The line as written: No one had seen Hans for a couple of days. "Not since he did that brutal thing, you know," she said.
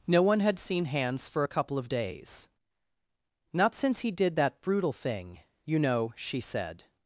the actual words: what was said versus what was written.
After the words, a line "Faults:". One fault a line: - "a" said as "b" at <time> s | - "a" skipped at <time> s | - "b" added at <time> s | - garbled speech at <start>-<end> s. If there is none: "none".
No one had seen Hans for a couple of days. "Not since he did that brutal thing, you know," she said.
Faults:
none